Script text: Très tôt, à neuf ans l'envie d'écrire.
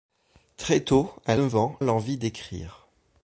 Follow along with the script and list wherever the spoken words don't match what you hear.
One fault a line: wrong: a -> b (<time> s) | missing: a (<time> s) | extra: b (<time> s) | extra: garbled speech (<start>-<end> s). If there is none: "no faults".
no faults